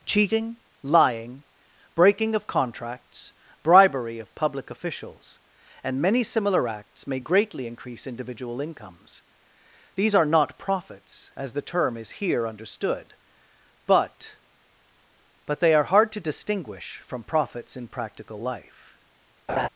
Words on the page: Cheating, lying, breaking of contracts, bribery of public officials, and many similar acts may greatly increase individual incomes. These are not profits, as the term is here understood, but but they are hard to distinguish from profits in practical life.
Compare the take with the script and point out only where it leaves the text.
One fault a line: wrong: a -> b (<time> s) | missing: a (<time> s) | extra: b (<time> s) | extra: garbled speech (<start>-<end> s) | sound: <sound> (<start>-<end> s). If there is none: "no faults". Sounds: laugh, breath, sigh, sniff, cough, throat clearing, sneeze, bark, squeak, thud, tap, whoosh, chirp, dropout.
sound: laugh (19.5-19.7 s)